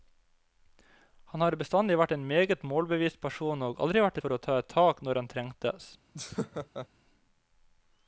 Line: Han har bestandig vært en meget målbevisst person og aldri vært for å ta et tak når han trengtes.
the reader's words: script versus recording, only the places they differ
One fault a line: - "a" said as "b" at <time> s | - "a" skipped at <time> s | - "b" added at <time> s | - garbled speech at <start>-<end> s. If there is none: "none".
none